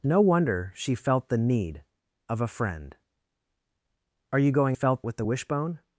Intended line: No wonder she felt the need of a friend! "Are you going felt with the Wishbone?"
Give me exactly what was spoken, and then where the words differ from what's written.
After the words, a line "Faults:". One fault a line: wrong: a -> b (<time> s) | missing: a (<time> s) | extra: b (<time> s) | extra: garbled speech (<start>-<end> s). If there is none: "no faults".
No wonder she felt the need of a friend! "Are you going felt with the Wishbone?"
Faults:
no faults